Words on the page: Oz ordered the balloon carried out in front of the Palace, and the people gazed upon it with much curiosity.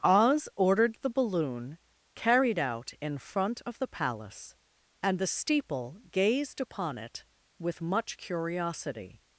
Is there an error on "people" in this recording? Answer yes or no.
yes